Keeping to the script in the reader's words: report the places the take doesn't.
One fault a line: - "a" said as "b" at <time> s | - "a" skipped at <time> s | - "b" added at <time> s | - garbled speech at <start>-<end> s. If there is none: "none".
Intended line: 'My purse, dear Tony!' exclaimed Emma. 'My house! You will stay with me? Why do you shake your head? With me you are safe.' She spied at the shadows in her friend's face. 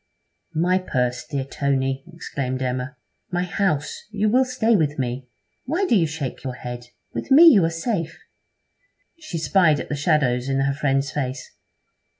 none